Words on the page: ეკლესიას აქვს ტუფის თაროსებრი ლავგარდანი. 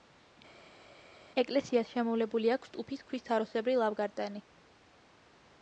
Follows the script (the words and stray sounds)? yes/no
no